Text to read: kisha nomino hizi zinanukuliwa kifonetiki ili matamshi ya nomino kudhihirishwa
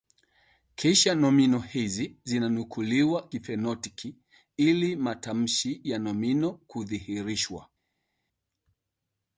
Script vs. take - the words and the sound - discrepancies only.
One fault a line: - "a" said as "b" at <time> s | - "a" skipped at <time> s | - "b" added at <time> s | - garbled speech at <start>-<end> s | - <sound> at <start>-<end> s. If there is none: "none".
none